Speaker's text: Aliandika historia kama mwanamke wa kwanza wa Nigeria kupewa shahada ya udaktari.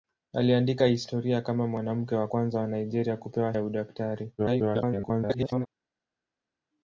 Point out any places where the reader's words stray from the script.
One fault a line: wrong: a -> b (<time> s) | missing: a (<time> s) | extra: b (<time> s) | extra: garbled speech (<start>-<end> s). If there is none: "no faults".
missing: shahada (3.5 s)
extra: garbled speech (4.4-5.7 s)